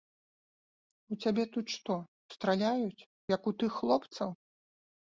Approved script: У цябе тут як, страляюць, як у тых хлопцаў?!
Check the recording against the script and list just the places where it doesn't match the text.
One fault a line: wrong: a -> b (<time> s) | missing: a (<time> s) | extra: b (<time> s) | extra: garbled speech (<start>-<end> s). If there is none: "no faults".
wrong: як -> што (1.8 s)